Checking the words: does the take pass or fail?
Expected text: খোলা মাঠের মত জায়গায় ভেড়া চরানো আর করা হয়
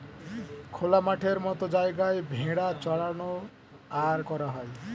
pass